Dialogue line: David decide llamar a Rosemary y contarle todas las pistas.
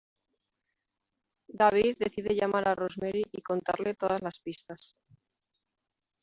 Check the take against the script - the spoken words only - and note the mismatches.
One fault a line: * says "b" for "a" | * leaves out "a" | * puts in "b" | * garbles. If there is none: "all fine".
all fine